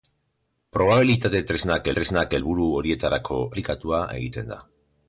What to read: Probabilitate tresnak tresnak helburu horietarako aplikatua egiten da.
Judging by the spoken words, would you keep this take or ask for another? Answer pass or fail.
pass